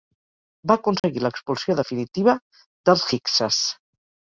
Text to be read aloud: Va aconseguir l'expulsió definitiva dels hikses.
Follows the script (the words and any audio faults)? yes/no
no